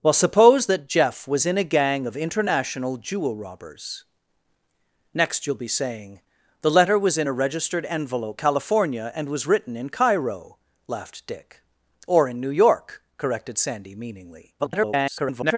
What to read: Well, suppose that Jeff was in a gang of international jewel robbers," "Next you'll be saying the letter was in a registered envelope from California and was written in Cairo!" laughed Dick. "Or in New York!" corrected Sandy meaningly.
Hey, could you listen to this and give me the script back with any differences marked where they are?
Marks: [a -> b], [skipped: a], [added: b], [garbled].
Well, suppose that Jeff was in a gang of international jewel robbers," "Next you'll be saying the letter was in a registered envelope [skipped: from] California and was written in Cairo!" laughed Dick. "Or in New York!" corrected Sandy meaningly. [garbled]